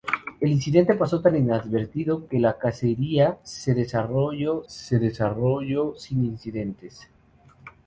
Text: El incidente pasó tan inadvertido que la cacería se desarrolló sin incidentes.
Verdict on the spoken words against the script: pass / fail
fail